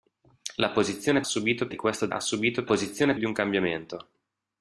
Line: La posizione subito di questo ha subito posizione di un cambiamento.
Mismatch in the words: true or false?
false